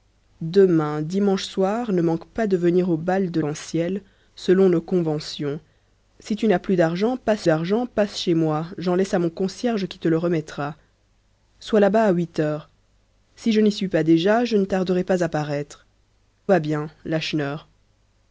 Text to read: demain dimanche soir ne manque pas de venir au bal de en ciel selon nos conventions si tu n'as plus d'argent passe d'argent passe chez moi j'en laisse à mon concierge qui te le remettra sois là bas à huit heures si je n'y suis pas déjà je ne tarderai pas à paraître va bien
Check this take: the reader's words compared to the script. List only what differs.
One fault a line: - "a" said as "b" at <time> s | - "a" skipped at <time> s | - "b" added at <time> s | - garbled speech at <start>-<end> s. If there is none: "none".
none